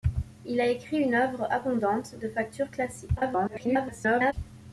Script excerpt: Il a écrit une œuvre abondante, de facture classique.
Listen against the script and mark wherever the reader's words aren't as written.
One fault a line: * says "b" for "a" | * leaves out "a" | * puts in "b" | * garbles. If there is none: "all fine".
* garbles